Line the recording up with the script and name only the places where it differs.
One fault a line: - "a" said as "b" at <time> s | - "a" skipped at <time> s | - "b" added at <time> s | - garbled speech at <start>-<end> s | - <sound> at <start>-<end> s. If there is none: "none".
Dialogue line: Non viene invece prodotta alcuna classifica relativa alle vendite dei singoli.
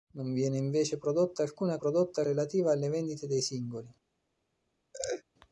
- "classifica" said as "prodotta" at 1.8 s
- laugh at 4.9-5.2 s